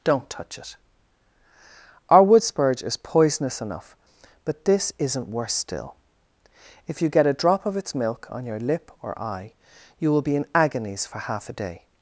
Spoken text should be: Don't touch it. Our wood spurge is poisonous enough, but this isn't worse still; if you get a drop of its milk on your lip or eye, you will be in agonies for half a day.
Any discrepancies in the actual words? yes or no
no